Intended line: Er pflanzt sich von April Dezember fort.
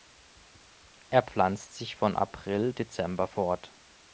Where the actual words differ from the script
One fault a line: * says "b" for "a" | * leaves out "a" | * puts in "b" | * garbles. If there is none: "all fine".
all fine